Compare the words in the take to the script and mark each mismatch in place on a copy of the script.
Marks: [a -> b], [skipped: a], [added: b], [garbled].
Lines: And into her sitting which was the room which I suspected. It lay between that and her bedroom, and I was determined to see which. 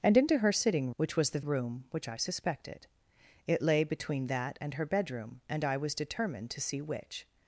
And into her sitting which was the room which I suspected. It lay between that and her bedroom, and I was determined to see which.